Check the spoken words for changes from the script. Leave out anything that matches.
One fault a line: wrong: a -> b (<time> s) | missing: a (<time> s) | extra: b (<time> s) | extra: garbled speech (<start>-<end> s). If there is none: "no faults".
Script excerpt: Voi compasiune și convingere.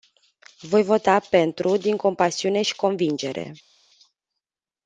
extra: vota pentru din (0.8 s)